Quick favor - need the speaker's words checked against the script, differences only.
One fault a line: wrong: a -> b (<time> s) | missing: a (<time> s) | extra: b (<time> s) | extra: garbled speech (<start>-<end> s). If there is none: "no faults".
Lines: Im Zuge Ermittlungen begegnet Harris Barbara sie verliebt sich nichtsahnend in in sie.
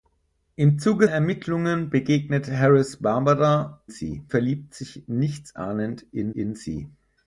no faults